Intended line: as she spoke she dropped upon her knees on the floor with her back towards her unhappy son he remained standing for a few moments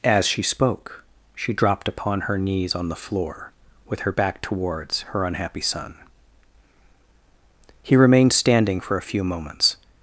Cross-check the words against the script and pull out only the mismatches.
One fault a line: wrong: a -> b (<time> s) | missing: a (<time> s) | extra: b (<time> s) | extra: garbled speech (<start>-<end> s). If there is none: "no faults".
no faults